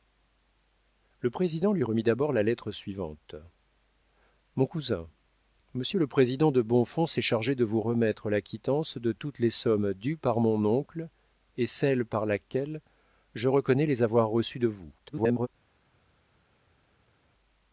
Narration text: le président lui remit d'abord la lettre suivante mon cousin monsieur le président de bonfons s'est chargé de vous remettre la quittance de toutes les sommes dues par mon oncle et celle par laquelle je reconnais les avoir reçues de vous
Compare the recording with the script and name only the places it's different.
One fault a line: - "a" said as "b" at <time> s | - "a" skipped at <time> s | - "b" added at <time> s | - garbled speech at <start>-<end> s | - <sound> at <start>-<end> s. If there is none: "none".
- garbled speech at 15.0-15.5 s